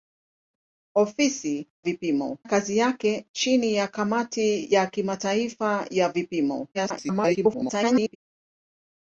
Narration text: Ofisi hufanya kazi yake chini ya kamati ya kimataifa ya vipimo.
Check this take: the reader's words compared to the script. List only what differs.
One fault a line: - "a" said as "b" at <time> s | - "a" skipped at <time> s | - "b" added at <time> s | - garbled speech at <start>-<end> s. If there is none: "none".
- "hufanya" said as "vipimo" at 1.8 s
- garbled speech at 6.7-8.2 s